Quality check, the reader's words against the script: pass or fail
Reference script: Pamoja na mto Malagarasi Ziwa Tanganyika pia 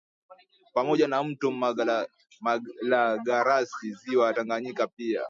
pass